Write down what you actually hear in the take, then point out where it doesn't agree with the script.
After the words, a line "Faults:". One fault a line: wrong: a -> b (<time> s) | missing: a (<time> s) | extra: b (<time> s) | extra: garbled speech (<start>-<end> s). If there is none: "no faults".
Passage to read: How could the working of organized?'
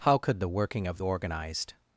How could the working of organized?'
Faults:
no faults